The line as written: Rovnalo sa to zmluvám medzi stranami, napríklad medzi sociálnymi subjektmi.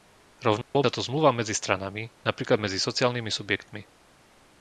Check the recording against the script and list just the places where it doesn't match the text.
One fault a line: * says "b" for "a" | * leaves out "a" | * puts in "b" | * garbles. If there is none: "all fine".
all fine